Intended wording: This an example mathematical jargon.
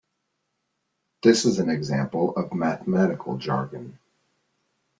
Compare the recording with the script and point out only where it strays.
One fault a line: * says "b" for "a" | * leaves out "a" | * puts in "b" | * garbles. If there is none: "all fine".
* puts in "is"
* puts in "of"